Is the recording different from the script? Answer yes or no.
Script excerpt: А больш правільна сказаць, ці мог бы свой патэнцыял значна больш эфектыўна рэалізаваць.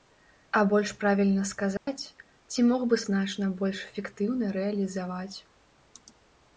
yes